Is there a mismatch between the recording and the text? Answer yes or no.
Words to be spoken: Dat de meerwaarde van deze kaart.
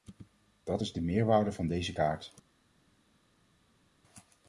yes